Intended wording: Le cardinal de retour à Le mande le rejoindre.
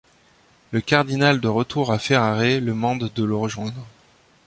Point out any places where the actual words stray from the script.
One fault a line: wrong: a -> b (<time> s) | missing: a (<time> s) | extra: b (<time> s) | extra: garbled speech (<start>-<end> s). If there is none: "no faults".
extra: Ferrare (2.0 s)
extra: de (3.1 s)